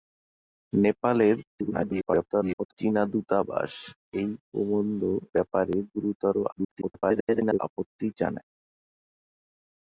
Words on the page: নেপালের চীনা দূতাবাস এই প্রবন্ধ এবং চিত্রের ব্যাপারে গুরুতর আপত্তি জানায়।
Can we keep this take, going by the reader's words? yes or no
no